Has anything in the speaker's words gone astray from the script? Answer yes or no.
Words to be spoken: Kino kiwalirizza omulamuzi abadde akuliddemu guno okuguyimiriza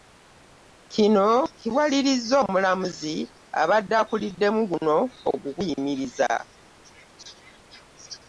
no